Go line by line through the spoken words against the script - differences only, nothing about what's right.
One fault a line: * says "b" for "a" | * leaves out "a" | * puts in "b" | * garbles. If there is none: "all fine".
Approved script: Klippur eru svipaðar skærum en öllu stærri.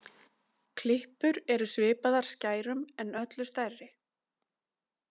all fine